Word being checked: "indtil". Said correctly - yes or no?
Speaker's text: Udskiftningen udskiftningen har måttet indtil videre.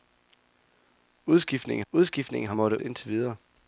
yes